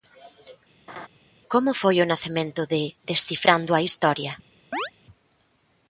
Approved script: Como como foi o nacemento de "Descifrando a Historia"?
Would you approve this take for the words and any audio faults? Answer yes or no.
no